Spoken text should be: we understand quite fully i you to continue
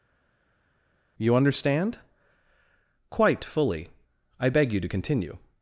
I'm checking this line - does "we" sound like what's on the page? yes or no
no